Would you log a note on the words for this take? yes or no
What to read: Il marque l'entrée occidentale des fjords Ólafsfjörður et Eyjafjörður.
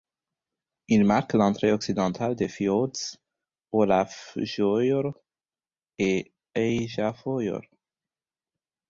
no